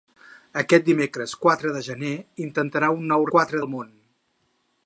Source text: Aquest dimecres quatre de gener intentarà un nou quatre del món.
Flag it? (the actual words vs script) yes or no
no